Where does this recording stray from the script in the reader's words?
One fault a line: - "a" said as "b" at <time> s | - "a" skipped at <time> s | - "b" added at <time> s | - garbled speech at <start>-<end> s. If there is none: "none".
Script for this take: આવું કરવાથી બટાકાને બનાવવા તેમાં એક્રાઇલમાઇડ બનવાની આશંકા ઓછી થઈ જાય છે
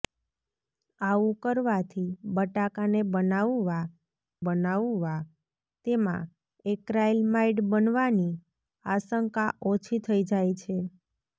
- "બનાવવા" added at 4.4 s